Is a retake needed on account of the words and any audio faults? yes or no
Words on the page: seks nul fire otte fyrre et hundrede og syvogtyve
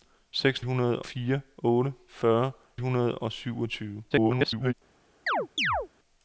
yes